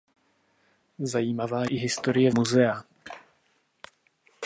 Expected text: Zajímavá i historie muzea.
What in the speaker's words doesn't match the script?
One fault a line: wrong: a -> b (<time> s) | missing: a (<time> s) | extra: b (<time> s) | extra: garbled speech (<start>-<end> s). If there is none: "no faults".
no faults